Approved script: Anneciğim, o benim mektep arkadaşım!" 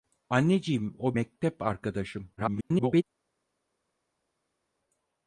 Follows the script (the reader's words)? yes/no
no